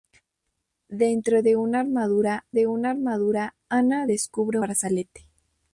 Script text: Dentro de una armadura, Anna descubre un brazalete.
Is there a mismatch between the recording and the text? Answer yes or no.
yes